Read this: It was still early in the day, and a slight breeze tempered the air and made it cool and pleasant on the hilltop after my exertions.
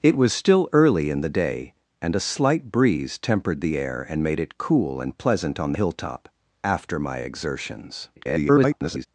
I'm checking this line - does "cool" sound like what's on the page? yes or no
yes